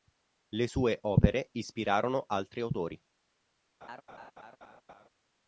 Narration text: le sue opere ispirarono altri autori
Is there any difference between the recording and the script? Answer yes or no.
no